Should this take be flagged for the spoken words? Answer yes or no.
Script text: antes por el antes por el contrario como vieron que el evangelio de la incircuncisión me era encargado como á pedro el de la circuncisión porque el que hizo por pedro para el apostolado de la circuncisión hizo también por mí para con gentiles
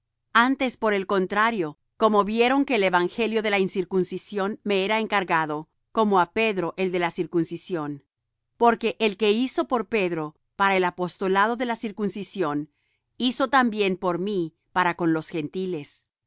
yes